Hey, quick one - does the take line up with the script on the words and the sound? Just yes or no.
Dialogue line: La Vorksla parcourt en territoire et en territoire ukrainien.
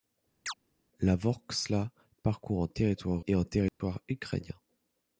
no